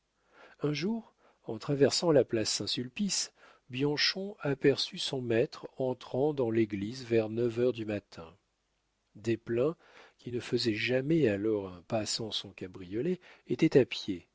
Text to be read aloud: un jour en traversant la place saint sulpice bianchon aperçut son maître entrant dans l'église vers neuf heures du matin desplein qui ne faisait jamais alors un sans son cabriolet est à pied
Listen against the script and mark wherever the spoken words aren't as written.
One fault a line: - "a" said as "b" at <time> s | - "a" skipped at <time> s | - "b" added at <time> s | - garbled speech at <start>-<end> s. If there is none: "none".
- "pas" added at 11.8 s
- "est" said as "était" at 13.5 s